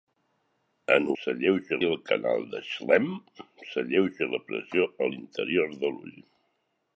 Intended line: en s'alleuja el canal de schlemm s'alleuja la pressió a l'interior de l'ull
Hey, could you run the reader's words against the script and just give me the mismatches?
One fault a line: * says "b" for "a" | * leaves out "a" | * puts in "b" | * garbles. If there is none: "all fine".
all fine